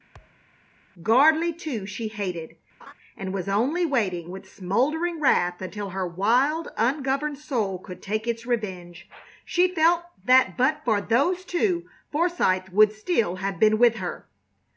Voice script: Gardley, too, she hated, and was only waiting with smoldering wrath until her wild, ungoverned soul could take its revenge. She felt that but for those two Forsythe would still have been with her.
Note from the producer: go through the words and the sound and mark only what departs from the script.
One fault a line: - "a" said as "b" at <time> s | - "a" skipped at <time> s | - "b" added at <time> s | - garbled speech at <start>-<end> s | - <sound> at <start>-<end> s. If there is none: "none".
- thud at 0.1-0.5 s
- laugh at 2.8-2.9 s